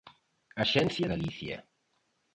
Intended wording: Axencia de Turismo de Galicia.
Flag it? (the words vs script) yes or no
yes